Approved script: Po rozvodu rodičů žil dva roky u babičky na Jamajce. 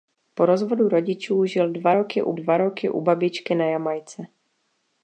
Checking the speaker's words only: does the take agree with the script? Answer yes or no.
no